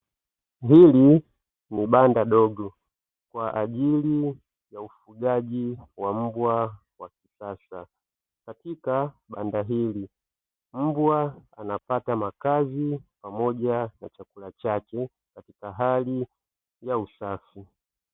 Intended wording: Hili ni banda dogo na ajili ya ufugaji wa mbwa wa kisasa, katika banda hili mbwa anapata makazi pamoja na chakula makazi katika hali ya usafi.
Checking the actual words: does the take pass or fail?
fail